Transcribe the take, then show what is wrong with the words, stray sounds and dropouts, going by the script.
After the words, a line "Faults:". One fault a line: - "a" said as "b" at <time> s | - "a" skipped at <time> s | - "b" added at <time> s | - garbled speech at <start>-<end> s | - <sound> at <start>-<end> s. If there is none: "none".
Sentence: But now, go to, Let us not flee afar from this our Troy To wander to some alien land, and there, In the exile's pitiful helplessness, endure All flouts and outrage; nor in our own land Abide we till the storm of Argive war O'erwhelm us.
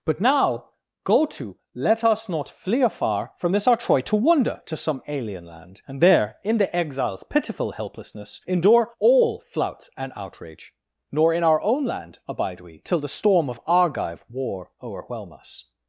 But now, go to, Let us not flee afar from this our Troy To wander to some alien land, and there, In the exile's pitiful helplessness, endure All flouts and outrage; nor in our own land Abide we till the storm of Argive war O'erwhelm us.
Faults:
none